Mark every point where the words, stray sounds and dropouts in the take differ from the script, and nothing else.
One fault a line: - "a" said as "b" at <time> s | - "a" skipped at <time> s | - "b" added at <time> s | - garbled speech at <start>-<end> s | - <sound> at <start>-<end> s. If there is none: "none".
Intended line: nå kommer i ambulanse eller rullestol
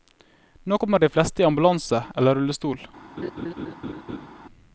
- "de fleste" added at 1.0 s
- laugh at 3.2-4.3 s